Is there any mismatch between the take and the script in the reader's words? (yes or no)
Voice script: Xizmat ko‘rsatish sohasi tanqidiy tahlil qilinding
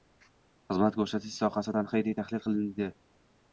no